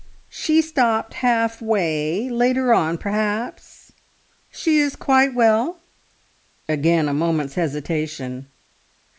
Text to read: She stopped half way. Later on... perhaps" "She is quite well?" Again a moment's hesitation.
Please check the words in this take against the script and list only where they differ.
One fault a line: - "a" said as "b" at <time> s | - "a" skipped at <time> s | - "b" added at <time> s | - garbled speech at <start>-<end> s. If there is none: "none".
none